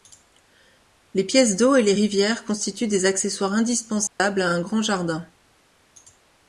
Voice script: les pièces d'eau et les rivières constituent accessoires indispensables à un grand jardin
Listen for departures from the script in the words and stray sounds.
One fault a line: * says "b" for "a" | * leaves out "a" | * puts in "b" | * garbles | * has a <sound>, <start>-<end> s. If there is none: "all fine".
* puts in "des"
* has a dropout, 4.1-4.2 s